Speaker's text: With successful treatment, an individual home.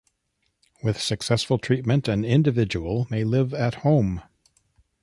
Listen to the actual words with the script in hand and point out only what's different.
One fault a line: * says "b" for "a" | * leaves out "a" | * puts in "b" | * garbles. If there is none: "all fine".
* puts in "may live at"